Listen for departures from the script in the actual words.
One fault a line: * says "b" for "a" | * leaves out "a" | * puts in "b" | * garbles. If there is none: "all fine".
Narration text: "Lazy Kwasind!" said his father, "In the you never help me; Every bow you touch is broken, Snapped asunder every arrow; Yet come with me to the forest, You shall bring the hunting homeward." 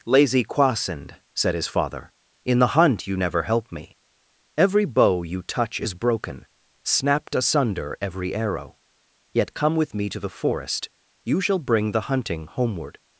* puts in "hunt"